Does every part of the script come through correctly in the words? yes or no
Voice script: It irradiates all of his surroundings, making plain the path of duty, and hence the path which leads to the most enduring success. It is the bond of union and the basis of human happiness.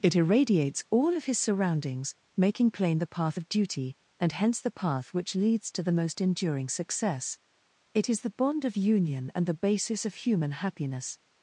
yes